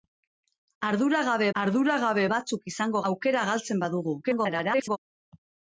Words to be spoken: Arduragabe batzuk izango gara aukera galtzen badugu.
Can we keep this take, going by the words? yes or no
no